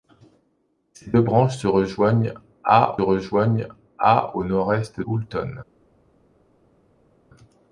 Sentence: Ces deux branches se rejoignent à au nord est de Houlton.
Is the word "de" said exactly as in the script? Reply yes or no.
no